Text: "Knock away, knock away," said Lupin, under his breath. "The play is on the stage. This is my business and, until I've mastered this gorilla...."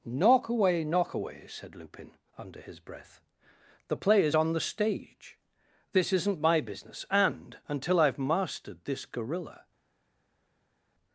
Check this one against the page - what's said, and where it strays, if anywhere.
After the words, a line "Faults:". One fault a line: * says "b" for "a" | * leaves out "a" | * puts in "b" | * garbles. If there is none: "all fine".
"Knock away, knock away," said Lupin, under his breath. "The play is on the stage. This isn't my business and, until I've mastered this gorilla...."
Faults:
* says "isn't" for "is"